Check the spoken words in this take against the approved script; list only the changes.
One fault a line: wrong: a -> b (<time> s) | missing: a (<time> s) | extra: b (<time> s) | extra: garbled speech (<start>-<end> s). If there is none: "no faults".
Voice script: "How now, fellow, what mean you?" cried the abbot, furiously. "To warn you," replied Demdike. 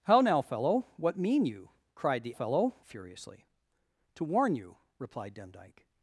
wrong: abbot -> fellow (2.3 s)